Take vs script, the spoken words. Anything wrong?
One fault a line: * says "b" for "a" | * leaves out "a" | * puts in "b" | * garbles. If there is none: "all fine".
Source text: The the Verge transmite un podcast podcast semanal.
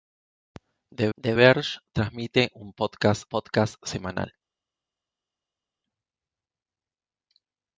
all fine